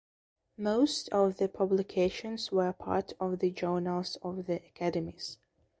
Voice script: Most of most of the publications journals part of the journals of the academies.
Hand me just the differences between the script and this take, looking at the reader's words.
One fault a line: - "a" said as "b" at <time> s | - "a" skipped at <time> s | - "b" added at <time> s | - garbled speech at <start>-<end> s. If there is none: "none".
- "most of" skipped at 1.4 s
- "journals" said as "were" at 2.5 s